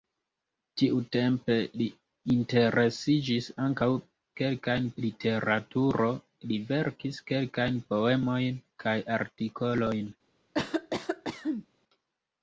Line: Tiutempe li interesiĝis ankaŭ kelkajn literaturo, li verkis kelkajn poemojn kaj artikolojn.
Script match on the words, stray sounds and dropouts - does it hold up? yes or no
no